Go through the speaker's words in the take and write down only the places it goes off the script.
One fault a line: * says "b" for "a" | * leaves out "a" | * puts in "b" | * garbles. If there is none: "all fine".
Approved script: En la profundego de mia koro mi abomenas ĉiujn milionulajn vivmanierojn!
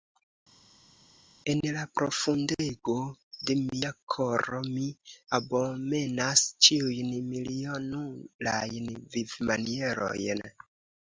all fine